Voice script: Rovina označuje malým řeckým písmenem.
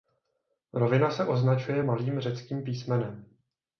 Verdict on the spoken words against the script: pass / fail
fail